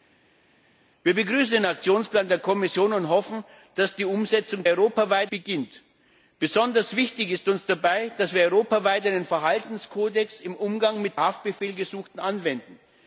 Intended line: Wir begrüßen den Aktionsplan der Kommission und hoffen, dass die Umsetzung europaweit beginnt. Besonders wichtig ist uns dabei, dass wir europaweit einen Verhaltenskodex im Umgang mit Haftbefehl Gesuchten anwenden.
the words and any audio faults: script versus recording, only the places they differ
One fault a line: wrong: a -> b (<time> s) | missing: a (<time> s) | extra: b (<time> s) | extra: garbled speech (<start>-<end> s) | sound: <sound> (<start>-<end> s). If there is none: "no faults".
no faults